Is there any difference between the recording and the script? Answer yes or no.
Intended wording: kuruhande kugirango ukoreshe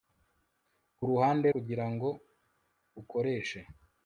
no